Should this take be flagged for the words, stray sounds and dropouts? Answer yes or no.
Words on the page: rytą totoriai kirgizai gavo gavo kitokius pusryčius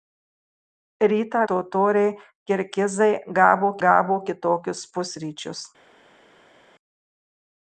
no